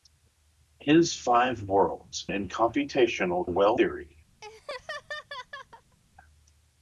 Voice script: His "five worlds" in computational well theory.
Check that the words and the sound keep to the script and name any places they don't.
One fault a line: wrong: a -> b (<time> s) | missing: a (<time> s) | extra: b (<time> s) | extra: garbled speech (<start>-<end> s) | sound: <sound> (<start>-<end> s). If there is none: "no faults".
sound: laugh (4.4-6.0 s)